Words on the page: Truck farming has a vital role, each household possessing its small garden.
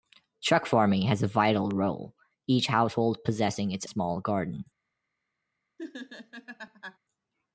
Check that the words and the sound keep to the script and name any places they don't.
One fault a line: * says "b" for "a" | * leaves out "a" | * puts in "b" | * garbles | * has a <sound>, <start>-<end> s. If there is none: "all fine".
* has a laugh, 5.8-7.0 s